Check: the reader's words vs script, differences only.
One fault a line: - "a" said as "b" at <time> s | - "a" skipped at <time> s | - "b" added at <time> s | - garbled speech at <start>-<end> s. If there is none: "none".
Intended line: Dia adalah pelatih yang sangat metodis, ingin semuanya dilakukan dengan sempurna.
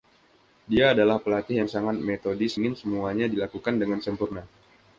none